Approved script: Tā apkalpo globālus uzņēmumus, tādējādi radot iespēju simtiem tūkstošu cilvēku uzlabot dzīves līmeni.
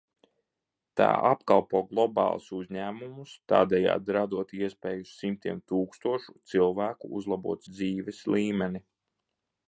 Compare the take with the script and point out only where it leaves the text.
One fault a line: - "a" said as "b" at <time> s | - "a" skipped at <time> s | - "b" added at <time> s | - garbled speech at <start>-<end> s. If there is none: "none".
none